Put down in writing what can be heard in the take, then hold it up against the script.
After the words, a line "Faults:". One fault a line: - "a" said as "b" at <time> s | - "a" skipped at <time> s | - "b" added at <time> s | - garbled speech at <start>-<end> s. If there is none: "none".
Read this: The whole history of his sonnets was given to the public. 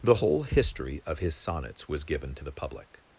The whole history of his sonnets was given to the public.
Faults:
none